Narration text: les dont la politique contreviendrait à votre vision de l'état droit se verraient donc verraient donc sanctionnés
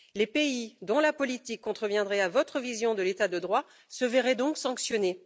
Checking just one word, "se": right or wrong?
right